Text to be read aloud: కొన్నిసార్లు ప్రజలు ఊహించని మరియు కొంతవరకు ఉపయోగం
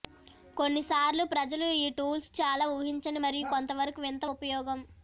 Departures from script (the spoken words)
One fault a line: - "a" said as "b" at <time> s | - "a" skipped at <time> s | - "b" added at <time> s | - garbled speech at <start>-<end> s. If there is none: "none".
- "ఈ టూల్స్ చాలా" added at 1.8 s
- "వింత" added at 4.0 s